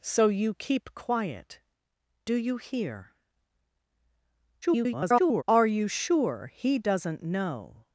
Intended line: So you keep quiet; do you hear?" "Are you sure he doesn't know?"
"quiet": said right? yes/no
yes